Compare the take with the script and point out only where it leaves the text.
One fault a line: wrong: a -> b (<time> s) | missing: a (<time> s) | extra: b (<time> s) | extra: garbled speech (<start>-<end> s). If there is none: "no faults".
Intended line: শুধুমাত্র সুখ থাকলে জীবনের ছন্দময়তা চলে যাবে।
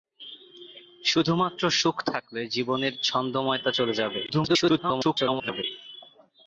extra: garbled speech (4.3-5.6 s)